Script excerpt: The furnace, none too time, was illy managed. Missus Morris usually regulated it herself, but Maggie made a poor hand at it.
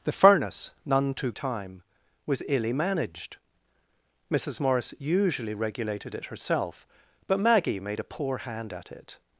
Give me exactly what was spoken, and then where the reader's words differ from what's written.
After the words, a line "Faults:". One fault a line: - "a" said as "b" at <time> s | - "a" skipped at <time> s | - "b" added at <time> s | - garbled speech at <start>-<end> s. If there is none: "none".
The furnace, none too time, was illy managed. Missus Morris usually regulated it herself, but Maggie made a poor hand at it.
Faults:
none